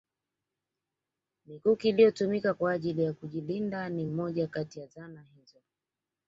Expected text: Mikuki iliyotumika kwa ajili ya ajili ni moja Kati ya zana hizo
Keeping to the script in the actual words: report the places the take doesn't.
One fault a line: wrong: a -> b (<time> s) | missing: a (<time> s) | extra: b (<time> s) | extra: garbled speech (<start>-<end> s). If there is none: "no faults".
wrong: ajili -> kujilinda (3.1 s)